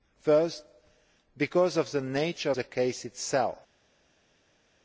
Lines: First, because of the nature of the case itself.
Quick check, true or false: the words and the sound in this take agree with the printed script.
false